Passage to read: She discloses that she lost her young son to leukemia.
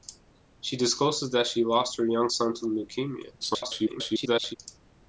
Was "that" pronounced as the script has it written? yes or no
yes